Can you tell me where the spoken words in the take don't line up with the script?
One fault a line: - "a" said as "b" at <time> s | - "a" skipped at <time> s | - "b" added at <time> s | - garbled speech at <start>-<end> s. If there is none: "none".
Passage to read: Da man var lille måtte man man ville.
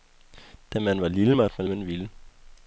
none